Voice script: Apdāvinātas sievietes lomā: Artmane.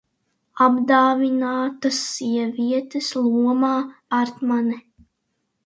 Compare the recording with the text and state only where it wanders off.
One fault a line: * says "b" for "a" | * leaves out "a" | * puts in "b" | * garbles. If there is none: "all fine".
all fine